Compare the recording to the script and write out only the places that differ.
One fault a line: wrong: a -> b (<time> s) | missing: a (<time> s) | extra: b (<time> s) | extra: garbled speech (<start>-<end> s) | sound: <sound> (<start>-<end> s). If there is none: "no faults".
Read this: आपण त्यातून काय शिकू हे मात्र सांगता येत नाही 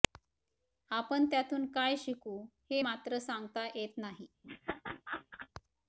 sound: laugh (4.4-5.5 s)